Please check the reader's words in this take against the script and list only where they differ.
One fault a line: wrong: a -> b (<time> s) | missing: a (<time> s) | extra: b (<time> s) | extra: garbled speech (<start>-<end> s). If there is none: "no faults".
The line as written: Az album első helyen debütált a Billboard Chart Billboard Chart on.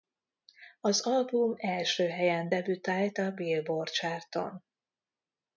missing: Billboard Chart (4.3 s)